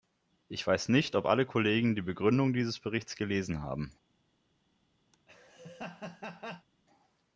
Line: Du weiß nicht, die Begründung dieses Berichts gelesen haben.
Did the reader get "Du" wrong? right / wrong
wrong